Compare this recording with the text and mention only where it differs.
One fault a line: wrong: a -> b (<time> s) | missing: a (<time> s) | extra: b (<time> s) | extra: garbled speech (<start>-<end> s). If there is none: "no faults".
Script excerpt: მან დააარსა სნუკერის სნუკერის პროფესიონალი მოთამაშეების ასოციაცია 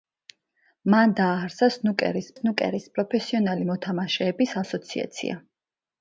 no faults